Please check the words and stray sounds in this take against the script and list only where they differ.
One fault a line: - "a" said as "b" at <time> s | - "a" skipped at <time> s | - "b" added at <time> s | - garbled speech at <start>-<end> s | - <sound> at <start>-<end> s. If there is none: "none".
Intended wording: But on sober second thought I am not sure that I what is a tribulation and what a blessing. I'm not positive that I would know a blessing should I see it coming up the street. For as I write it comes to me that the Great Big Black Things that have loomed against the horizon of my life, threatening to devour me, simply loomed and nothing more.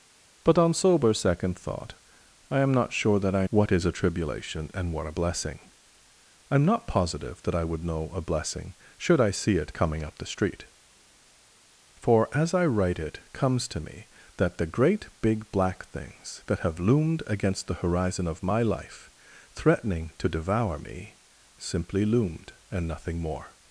none